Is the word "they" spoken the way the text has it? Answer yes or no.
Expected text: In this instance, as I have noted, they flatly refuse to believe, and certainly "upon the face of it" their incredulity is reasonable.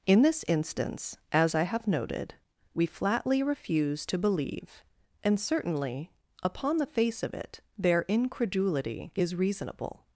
no